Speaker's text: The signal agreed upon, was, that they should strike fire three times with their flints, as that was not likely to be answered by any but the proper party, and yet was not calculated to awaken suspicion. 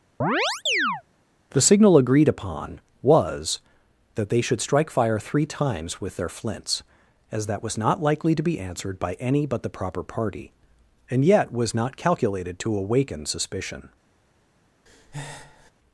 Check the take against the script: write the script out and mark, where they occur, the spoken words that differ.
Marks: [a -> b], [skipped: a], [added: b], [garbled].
The signal agreed upon, was, that they should strike fire three times with their flints, as that was not likely to be answered by any but the proper party, and yet was not calculated to awaken suspicion.